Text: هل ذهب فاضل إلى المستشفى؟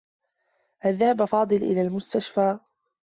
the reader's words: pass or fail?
pass